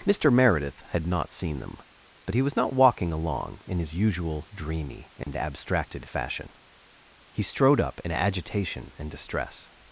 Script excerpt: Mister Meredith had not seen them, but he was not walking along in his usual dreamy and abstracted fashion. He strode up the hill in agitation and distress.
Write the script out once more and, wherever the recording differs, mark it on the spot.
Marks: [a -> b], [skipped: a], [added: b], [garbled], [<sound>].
Mister Meredith had not seen them, but he was not walking along in his usual dreamy and [dropout] abstracted fashion. He strode up [skipped: the hill] in agitation and distress.